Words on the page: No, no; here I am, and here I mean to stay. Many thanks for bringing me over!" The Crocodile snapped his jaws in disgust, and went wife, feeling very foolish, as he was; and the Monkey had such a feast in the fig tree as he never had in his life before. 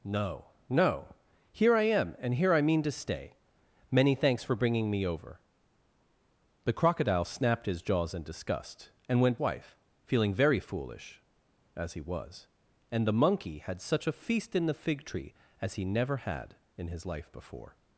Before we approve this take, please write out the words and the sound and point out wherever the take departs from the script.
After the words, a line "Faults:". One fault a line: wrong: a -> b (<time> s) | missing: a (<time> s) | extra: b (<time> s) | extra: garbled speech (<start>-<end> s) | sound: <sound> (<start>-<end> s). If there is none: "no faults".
No, no; here I am, and here I mean to stay. Many thanks for bringing me over!" The Crocodile snapped his jaws in disgust, and went wife, feeling very foolish, as he was; and the Monkey had such a feast in the fig tree as he never had in his life before.
Faults:
no faults